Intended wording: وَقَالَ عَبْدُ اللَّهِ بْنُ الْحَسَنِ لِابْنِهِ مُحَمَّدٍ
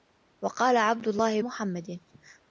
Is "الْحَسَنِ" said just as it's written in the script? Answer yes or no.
no